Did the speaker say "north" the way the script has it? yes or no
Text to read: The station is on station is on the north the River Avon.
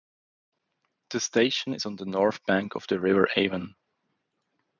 no